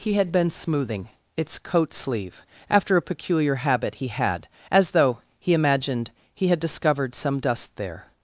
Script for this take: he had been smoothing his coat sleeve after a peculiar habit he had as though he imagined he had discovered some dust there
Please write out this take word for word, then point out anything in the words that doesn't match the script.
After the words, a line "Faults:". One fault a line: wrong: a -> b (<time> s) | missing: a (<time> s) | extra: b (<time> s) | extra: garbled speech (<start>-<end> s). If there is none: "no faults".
he had been smoothing its coat sleeve after a peculiar habit he had as though he imagined he had discovered some dust there
Faults:
wrong: his -> its (1.4 s)